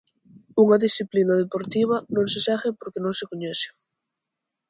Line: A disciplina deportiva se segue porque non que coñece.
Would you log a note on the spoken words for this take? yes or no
yes